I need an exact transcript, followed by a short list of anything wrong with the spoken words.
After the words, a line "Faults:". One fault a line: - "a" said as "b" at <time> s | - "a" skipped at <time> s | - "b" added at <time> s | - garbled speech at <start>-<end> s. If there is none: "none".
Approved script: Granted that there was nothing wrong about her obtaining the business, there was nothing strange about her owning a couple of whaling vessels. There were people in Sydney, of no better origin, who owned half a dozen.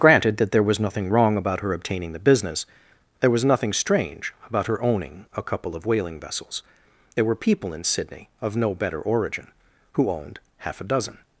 Granted that there was nothing wrong about her obtaining the business, there was nothing strange about her owning a couple of whaling vessels. There were people in Sydney, of no better origin, who owned half a dozen.
Faults:
none